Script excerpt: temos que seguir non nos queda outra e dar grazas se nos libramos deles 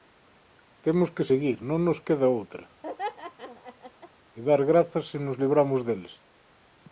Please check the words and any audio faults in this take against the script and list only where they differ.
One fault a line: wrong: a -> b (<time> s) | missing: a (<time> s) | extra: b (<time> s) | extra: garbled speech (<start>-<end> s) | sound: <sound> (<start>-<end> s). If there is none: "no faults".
sound: laugh (2.8-4.1 s)